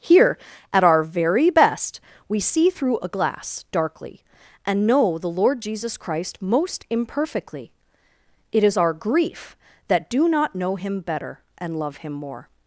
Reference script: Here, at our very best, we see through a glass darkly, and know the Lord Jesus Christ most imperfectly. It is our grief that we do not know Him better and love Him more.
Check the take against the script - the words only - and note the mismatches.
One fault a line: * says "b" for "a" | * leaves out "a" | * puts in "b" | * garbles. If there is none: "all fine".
* leaves out "we"